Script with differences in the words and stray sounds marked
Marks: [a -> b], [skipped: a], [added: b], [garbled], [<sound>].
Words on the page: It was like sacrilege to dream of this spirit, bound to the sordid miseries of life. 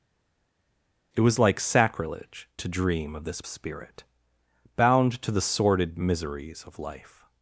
It was like sacrilege to dream of this spirit, bound to the sordid miseries of life.